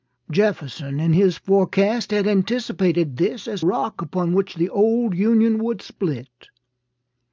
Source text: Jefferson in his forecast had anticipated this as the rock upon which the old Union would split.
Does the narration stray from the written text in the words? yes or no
yes